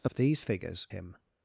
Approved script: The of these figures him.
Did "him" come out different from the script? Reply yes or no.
no